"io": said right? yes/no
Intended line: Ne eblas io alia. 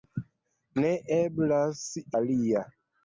no